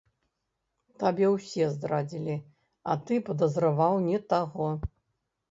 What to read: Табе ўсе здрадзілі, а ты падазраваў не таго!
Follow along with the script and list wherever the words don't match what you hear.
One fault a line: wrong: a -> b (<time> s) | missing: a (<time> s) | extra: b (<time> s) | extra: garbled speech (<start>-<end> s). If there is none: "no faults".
no faults